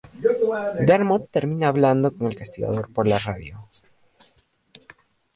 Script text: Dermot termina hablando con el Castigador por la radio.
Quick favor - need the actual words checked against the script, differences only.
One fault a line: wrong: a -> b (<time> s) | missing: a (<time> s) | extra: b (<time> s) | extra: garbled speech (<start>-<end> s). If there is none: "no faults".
no faults